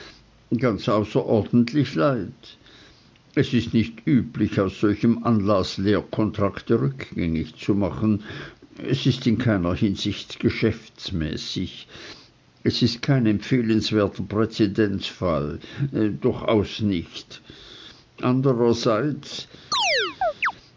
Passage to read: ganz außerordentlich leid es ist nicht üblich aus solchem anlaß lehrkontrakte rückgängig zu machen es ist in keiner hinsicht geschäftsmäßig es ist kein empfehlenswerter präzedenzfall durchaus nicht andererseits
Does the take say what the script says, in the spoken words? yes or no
yes